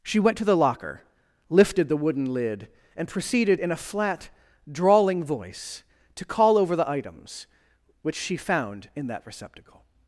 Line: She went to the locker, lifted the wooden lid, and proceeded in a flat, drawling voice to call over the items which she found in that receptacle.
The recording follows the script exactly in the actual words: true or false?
true